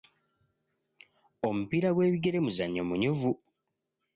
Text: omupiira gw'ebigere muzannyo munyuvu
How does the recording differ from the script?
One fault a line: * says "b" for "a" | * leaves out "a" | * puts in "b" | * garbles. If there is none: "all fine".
all fine